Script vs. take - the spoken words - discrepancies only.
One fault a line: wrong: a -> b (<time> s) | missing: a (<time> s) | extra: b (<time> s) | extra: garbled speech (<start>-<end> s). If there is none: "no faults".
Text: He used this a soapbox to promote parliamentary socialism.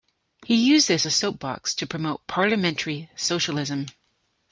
no faults